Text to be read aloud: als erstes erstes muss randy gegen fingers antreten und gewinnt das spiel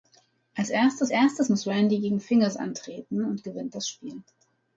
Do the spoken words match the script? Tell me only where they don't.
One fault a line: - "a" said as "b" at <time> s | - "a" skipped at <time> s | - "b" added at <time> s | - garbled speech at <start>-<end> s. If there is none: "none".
none